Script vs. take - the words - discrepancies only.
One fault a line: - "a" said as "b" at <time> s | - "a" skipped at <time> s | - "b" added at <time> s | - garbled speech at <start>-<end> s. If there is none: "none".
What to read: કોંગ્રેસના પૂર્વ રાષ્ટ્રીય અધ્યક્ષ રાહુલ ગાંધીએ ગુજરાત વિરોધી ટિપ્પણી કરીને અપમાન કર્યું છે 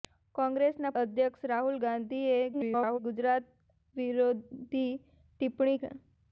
- "પૂર્વ રાષ્ટ્રીય" skipped at 0.9 s
- garbled speech at 2.5-3.0 s
- "કરીને અપમાન કર્યું" skipped at 5.8 s